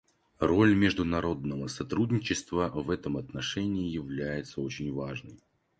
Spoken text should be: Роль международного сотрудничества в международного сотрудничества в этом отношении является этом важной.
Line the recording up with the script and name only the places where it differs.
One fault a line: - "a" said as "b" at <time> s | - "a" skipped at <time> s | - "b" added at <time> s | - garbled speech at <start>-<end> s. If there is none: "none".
- "международного сотрудничества в" skipped at 2.9 s
- "этом" said as "очень" at 4.6 s